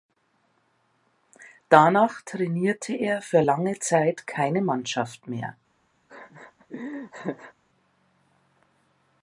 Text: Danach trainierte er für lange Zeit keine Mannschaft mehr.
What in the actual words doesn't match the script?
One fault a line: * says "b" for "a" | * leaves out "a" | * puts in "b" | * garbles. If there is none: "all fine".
all fine